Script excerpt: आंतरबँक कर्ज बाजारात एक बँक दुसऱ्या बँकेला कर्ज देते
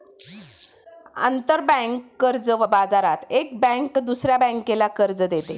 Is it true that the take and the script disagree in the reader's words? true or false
false